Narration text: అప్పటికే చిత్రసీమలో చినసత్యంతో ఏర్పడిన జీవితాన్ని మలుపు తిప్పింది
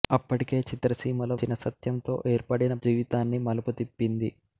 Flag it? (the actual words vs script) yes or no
no